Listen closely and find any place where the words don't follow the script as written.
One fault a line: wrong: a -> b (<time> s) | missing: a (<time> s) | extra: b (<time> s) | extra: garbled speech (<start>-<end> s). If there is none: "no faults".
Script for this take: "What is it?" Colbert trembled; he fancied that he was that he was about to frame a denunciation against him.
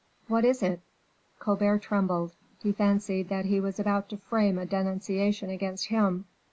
missing: that he was (3.8 s)